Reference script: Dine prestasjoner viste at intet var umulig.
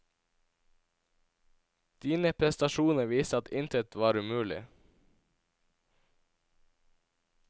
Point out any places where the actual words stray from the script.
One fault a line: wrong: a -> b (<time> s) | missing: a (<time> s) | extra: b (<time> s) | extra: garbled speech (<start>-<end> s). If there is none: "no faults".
no faults